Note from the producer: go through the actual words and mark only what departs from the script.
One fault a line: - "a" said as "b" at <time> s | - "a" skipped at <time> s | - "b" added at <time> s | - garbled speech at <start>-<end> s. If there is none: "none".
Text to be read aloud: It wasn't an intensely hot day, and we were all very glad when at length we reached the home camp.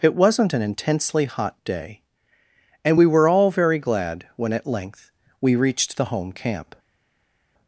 none